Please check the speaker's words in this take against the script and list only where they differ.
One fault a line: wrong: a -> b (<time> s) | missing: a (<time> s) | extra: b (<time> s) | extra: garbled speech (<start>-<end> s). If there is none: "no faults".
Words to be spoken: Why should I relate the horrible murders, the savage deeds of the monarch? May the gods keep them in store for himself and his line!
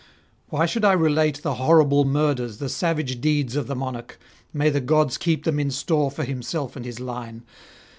no faults